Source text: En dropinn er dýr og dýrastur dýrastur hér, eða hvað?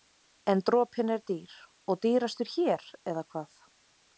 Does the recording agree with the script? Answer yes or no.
no